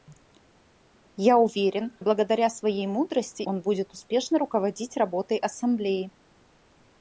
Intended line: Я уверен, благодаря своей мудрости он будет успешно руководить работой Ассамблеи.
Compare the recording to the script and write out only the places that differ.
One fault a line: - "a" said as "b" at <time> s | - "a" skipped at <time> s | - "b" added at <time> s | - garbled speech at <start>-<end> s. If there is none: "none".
none